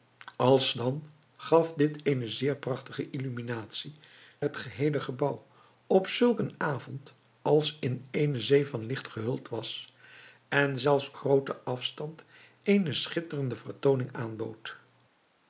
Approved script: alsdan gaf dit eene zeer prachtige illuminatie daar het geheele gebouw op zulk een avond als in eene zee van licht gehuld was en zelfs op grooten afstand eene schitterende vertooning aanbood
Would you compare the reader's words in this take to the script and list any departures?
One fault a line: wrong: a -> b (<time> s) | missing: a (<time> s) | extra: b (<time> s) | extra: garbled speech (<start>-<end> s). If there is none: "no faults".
missing: daar (4.0 s)
missing: op (11.1 s)